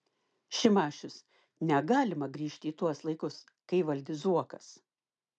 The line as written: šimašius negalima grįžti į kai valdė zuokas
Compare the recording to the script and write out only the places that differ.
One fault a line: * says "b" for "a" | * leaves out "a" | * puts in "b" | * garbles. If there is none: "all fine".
* puts in "tuos laikus"